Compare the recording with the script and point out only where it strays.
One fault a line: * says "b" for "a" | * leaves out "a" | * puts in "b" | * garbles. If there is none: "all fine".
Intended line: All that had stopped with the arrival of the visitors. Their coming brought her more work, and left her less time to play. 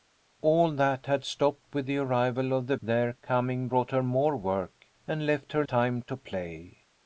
* leaves out "visitors"
* leaves out "less"